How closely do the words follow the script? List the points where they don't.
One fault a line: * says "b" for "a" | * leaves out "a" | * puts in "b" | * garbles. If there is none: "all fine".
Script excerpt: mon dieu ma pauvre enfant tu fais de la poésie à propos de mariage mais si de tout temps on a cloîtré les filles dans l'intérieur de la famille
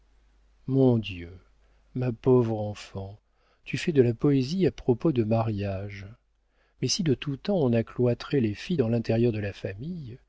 all fine